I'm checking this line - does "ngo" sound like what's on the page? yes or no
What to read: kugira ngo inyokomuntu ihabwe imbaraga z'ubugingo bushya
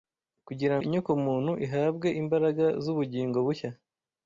no